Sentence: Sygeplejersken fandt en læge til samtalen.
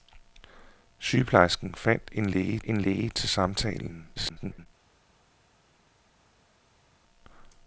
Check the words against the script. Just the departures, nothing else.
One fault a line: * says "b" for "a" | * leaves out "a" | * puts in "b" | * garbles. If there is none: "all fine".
* puts in "en læge"
* garbles